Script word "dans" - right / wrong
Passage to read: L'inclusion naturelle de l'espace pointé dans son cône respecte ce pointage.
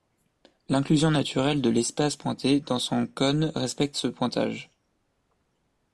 right